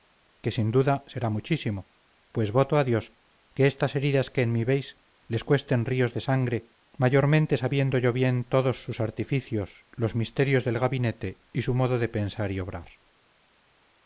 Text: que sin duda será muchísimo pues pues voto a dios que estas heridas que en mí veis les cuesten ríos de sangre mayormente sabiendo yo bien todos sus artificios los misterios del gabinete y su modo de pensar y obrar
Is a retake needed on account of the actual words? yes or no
yes